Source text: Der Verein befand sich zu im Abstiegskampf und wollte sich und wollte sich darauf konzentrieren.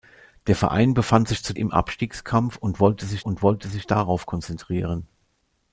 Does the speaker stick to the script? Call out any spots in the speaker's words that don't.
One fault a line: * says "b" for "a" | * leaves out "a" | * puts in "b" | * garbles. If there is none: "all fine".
all fine